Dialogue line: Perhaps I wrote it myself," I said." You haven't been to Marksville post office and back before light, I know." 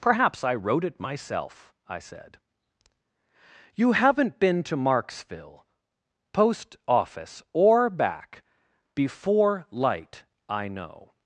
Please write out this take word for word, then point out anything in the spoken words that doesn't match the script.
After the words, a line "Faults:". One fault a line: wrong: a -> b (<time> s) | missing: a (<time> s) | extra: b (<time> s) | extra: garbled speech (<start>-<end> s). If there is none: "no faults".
Perhaps I wrote it myself," I said." You haven't been to Marksville post office or back before light, I know."
Faults:
wrong: and -> or (7.5 s)